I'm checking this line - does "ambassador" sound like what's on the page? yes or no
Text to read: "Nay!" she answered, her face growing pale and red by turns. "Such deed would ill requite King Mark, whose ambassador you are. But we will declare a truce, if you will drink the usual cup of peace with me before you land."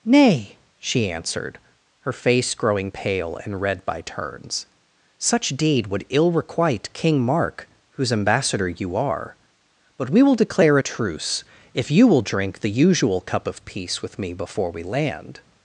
yes